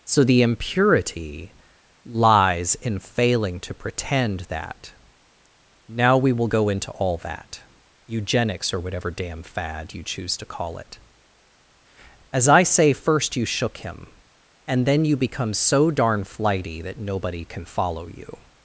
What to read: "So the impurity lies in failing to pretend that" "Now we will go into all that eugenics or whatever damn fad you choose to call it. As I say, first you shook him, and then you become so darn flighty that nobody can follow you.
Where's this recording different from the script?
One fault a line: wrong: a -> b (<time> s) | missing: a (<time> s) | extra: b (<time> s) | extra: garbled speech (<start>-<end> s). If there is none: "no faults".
no faults